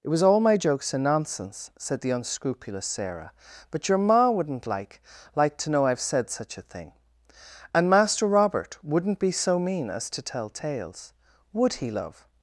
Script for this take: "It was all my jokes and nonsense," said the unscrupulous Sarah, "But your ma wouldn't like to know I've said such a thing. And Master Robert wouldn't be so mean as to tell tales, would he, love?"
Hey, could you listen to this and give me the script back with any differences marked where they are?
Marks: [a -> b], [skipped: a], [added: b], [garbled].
"It was all my jokes and nonsense," said the unscrupulous Sarah, "But your ma wouldn't like [added: like] to know I've said such a thing. And Master Robert wouldn't be so mean as to tell tales, would he, love?"